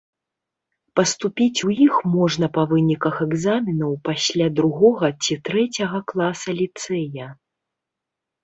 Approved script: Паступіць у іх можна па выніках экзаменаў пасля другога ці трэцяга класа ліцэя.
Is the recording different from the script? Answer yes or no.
no